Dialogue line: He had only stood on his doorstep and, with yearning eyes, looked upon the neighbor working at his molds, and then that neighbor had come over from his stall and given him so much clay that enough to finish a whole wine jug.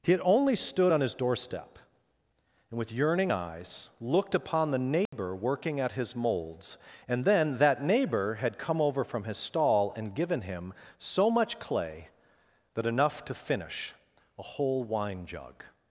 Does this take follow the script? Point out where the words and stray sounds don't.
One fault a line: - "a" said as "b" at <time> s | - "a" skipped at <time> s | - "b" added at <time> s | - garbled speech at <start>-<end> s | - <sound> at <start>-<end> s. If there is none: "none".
- dropout at 5.1-5.1 s